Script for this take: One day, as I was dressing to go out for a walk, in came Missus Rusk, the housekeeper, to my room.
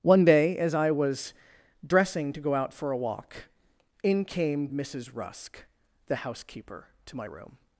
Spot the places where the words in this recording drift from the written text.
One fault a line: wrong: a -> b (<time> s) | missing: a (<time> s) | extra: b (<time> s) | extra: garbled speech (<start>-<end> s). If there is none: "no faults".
no faults